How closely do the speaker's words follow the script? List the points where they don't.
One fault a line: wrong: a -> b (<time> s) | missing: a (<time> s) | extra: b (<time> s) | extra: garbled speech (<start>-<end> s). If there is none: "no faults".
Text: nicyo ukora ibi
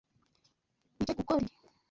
no faults